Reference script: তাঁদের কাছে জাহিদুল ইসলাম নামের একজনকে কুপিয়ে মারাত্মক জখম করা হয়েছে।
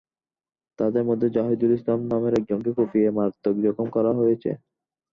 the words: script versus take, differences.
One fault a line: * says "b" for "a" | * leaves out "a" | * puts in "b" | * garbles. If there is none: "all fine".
* says "মধ্যে" for "কাছে"